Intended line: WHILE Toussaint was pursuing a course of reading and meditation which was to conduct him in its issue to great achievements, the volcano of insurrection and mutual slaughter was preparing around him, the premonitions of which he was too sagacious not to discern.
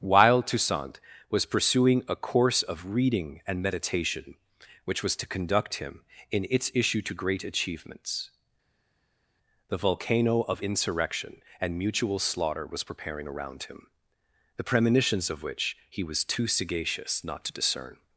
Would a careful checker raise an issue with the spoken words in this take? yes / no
no